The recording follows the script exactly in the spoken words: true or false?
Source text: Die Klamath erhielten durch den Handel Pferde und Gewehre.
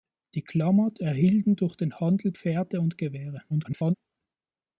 false